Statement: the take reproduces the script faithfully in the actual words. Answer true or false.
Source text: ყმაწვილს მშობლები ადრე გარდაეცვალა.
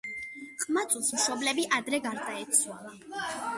true